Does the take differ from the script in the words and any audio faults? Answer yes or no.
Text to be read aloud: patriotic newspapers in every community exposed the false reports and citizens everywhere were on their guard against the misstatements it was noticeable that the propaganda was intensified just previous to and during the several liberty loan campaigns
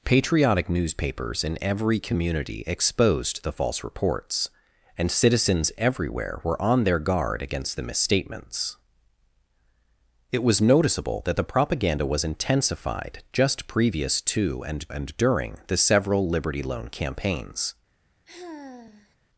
yes